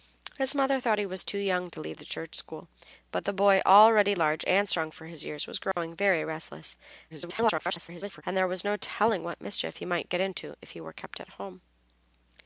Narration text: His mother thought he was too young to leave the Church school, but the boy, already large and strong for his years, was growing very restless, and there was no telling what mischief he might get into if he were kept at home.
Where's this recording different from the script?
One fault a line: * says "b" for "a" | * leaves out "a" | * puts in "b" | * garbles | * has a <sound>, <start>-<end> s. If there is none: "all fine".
* has a dropout, 5.7-5.8 s
* garbles